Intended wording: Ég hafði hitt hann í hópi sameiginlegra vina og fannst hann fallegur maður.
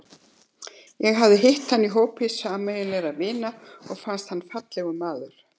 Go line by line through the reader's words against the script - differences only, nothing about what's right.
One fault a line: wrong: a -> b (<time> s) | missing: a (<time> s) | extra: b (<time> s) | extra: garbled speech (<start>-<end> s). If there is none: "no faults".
no faults